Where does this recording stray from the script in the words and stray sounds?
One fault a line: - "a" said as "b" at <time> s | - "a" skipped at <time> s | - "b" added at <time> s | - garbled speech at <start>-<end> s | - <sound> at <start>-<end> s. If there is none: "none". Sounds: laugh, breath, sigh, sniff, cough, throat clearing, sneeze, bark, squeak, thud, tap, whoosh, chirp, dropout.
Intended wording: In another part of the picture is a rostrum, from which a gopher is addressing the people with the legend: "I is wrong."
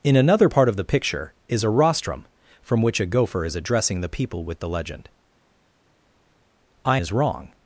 none